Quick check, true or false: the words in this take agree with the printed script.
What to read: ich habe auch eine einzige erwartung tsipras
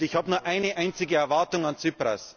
false